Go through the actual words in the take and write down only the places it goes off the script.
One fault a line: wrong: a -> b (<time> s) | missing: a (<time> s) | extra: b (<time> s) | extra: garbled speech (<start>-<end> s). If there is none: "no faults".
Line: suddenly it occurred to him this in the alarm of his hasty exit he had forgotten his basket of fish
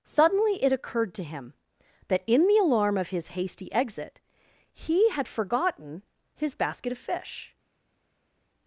wrong: this -> that (2.1 s)